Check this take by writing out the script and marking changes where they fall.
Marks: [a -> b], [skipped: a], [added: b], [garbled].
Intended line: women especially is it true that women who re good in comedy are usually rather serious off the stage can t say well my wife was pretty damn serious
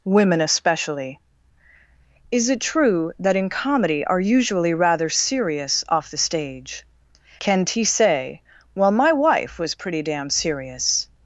women especially is it true that [skipped: women who re good] in comedy are usually rather serious off the stage can t say well my wife was pretty damn serious